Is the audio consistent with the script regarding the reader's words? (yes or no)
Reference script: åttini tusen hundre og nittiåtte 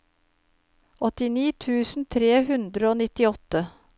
no